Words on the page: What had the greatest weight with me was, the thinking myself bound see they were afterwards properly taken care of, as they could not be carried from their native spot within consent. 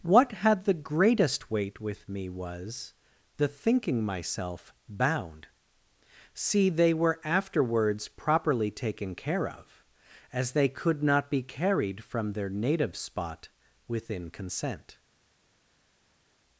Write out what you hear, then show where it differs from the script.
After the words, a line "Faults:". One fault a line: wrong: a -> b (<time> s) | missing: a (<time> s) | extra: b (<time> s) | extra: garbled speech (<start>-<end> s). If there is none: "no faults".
What had the greatest weight with me was, the thinking myself bound see they were afterwards properly taken care of, as they could not be carried from their native spot within consent.
Faults:
no faults